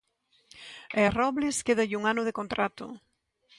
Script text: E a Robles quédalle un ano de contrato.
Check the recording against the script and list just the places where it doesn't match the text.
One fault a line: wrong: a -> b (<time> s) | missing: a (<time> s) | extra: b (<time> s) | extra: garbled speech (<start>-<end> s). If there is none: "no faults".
no faults